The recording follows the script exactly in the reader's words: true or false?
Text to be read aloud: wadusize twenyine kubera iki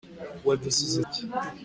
false